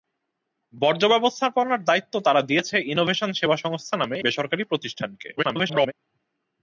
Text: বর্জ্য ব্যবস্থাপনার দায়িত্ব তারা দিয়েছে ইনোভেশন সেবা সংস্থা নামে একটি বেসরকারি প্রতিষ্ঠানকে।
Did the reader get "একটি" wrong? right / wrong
wrong